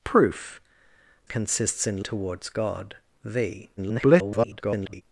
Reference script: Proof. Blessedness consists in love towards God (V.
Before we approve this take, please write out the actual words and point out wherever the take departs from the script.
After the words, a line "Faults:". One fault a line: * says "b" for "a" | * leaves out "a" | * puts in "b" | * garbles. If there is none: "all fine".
Proof. Consists in towards God (V. [garbled]
Faults:
* leaves out "Blessedness"
* leaves out "love"
* garbles